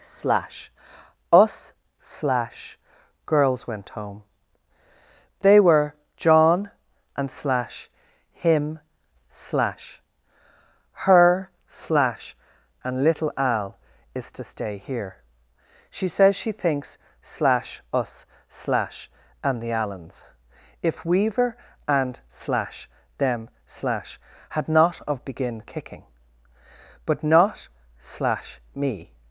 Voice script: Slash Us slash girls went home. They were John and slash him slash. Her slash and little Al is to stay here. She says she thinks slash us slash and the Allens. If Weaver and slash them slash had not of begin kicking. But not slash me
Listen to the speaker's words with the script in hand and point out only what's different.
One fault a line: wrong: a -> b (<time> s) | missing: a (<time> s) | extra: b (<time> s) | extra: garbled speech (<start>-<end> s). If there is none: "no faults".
no faults